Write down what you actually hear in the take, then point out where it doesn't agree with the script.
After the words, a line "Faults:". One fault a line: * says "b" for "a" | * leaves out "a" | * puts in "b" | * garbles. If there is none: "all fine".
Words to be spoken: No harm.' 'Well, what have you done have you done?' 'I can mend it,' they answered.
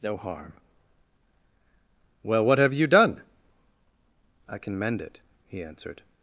No harm.' 'Well, what have you done?' 'I can mend it,' he answered.
Faults:
* leaves out "have you done"
* says "he" for "they"